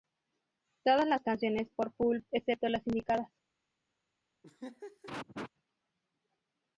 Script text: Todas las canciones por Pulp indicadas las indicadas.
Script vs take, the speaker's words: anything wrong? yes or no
yes